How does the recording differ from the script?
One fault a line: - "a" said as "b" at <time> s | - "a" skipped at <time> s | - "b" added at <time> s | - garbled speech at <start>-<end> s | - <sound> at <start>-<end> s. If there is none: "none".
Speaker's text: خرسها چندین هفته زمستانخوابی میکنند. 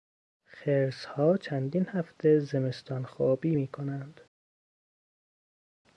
none